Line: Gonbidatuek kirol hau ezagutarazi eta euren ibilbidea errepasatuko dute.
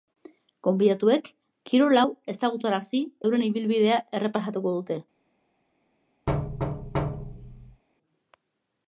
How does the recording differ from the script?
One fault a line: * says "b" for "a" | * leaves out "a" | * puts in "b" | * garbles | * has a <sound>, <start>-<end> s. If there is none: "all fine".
* leaves out "eta"
* has a thud, 6.3-7.8 s